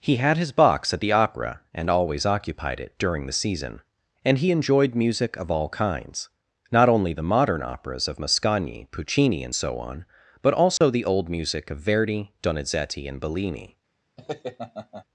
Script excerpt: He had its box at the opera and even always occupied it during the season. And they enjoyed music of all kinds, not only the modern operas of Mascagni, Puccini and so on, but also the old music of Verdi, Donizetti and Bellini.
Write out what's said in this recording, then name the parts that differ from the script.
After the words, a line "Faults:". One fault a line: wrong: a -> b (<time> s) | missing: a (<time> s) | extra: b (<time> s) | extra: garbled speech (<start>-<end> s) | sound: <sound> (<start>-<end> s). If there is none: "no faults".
He had his box at the opera and always occupied it during the season. And he enjoyed music of all kinds, not only the modern operas of Mascagni, Puccini and so on, but also the old music of Verdi, Donizetti and Bellini.
Faults:
wrong: its -> his (0.4 s)
missing: even (1.9 s)
wrong: they -> he (4.4 s)
sound: dropout (10.8-10.8 s)
sound: laugh (14.2-15.0 s)